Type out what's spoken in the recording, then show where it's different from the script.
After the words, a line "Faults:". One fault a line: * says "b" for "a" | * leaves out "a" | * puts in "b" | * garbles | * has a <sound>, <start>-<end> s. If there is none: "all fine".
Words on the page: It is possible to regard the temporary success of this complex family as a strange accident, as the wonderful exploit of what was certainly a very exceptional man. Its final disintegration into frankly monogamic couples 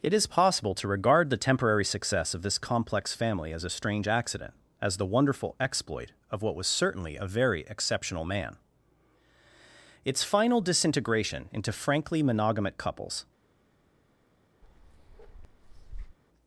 It is possible to regard the temporary success of this complex family as a strange accident, as the wonderful exploit of what was certainly a very exceptional man. Its final disintegration into frankly monogamic couples
Faults:
* has a bark, 14.6-16.2 s